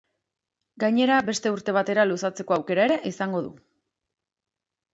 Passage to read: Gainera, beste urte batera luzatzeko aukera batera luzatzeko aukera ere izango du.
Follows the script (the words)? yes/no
no